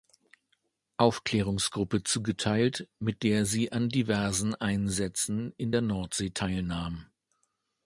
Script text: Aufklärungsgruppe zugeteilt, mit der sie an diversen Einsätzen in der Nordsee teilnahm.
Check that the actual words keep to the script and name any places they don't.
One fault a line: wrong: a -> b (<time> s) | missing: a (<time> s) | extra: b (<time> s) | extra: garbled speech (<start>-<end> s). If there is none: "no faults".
no faults